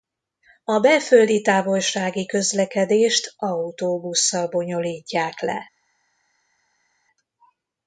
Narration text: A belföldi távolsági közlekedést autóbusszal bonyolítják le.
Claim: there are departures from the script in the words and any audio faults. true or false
false